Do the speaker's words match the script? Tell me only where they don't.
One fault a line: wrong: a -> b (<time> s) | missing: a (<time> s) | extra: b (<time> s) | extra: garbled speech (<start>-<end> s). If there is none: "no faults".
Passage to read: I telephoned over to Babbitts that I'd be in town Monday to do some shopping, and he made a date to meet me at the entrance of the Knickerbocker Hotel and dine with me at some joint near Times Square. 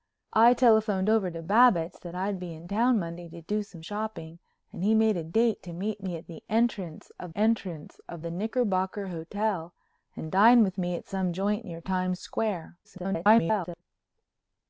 extra: entrance of (7.3 s)
extra: garbled speech (12.8-13.8 s)